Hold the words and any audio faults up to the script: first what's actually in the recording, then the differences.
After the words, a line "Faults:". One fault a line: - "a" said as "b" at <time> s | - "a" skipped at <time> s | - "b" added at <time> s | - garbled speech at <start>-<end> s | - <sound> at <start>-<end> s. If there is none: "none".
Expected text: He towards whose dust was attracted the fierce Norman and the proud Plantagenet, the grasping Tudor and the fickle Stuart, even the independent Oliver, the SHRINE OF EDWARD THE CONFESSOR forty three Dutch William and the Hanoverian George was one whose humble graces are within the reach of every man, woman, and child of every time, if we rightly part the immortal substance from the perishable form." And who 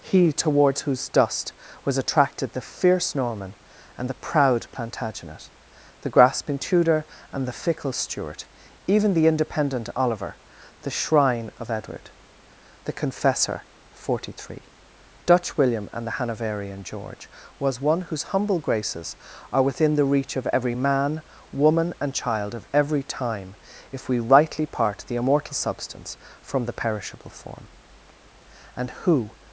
He towards whose dust was attracted the fierce Norman and the proud Plantagenet, the grasping Tudor and the fickle Stuart, even the independent Oliver, the SHRINE OF EDWARD THE CONFESSOR forty three Dutch William and the Hanoverian George was one whose humble graces are within the reach of every man, woman, and child of every time, if we rightly part the immortal substance from the perishable form." And who
Faults:
none